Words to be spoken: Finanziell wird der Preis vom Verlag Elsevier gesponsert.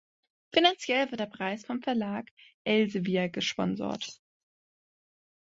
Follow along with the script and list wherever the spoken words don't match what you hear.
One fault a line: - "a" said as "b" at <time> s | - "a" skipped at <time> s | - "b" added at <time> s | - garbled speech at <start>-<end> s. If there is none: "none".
none